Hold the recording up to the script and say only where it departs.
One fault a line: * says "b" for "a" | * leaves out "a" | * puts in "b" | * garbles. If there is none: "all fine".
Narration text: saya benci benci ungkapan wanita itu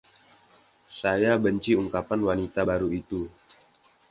* leaves out "benci"
* puts in "baru"